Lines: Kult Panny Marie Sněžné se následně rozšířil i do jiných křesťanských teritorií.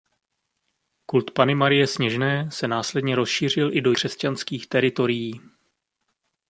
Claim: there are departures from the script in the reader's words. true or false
true